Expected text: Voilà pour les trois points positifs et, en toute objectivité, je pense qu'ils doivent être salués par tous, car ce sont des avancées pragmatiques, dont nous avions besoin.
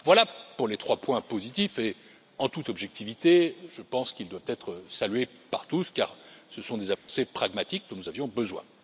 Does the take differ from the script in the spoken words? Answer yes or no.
no